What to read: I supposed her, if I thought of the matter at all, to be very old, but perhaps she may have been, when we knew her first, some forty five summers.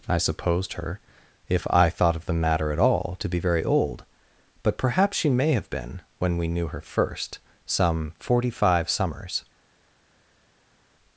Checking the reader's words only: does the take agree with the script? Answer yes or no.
yes